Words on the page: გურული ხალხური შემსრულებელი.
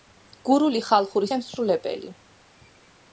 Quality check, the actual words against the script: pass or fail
pass